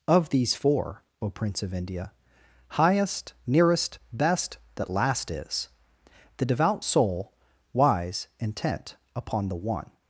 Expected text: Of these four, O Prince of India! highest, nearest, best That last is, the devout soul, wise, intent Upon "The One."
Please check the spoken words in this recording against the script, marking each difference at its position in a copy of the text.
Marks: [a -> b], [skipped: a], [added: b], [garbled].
Of these four, O Prince of India! highest, nearest, best That last is, the devout soul, wise, intent Upon "The One."